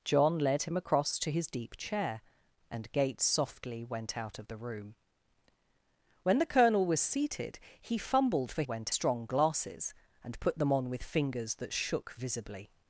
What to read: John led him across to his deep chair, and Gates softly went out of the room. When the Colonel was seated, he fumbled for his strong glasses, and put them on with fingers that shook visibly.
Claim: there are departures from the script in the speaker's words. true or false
true